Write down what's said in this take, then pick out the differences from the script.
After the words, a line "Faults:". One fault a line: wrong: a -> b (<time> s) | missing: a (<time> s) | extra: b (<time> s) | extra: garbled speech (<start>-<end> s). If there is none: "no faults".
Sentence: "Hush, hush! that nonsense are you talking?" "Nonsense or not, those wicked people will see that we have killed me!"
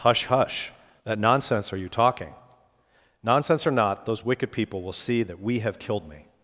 "Hush, hush! that nonsense are you talking?" "Nonsense or not, those wicked people will see that we have killed me!"
Faults:
no faults